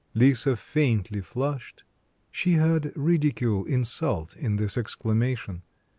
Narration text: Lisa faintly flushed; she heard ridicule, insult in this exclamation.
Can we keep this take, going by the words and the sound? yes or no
yes